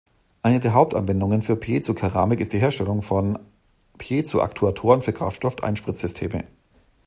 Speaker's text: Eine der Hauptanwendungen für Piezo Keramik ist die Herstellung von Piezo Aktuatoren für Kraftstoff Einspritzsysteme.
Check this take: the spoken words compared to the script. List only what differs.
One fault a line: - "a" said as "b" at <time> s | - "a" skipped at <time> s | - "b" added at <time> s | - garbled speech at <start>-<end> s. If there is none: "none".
none